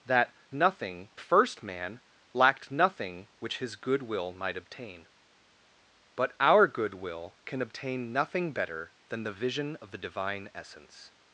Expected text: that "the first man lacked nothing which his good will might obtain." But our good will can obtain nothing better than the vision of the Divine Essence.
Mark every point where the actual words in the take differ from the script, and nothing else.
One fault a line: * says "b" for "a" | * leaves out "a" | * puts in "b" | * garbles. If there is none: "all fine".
* says "nothing" for "the"